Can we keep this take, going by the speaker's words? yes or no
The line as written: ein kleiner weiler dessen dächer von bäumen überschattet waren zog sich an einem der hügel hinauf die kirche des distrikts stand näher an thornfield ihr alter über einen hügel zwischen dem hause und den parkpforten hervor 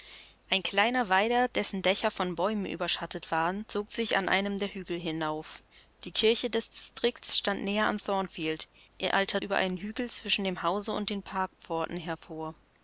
yes